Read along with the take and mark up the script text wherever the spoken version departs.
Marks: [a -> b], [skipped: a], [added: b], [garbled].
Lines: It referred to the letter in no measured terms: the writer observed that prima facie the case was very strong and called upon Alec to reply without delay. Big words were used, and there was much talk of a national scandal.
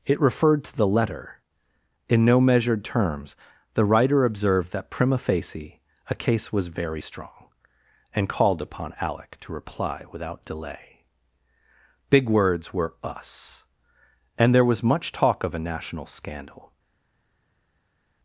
It referred to the letter in no measured terms: the writer observed that prima facie [the -> a] case was very strong and called upon Alec to reply without delay. Big words were [used, -> us] and there was much talk of a national scandal.